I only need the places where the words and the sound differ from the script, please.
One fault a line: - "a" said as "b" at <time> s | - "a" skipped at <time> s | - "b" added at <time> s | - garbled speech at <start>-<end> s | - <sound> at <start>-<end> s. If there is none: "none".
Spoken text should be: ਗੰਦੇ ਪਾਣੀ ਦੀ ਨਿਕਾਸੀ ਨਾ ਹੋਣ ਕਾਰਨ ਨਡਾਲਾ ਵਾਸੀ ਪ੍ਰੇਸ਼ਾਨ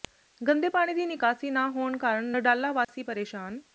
- dropout at 2.8-2.9 s